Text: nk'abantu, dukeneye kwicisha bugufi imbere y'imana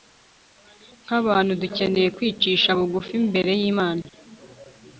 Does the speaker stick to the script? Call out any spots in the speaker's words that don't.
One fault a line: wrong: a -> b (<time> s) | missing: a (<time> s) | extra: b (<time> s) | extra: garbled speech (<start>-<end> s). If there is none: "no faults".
no faults